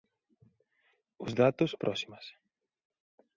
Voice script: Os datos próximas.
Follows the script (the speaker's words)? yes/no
yes